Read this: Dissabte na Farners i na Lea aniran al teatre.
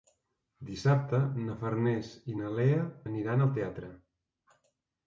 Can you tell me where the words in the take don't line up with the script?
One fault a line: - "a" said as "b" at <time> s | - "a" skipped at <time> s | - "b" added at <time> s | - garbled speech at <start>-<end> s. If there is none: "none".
none